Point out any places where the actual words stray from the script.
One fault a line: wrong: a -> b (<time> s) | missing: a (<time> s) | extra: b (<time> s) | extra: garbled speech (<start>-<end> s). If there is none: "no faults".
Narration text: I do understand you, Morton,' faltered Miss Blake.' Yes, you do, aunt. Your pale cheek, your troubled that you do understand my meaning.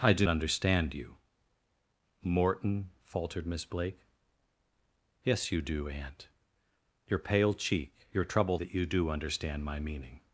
no faults